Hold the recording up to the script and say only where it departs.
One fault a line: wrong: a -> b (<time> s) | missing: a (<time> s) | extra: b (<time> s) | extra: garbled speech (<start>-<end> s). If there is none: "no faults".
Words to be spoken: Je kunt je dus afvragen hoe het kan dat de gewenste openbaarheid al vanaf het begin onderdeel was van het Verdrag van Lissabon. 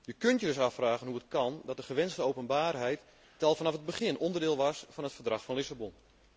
no faults